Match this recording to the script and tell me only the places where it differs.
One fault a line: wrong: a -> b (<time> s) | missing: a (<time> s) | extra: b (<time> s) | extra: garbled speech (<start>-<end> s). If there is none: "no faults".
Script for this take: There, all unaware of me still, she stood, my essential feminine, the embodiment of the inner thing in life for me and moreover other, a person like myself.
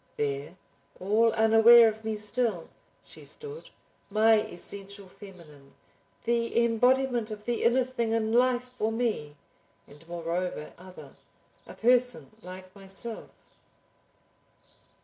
no faults